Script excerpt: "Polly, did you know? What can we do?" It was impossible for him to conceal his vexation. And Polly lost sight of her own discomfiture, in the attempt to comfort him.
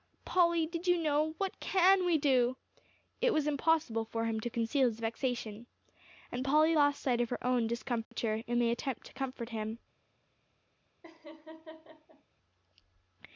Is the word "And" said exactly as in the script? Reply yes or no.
yes